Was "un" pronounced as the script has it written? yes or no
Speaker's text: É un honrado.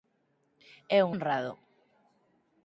yes